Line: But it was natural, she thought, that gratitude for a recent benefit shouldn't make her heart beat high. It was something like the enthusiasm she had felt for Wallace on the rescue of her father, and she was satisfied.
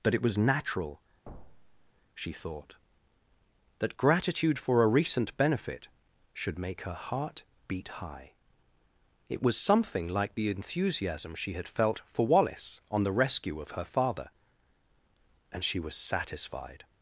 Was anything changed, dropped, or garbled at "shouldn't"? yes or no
yes